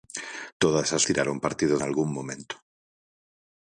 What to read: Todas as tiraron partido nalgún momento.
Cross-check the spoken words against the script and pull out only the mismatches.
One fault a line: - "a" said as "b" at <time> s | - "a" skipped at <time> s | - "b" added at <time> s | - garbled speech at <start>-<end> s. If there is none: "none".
none